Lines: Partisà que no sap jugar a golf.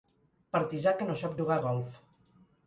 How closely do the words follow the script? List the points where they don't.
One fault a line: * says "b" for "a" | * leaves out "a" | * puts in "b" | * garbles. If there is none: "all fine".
all fine